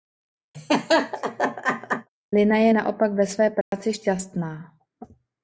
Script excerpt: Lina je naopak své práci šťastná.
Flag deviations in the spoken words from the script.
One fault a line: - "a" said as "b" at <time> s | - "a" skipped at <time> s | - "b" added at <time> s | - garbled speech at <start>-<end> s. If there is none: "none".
- "ve" added at 3.1 s